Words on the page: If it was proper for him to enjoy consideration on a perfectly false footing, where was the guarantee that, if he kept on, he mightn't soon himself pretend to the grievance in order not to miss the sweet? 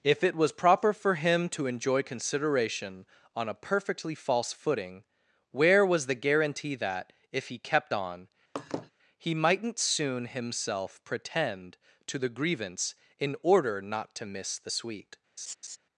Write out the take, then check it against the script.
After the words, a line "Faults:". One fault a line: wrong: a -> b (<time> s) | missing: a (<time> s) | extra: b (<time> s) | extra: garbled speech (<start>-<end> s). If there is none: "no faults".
If it was proper for him to enjoy consideration on a perfectly false footing, where was the guarantee that, if he kept on, he mightn't soon himself pretend to the grievance in order not to miss the sweet?
Faults:
no faults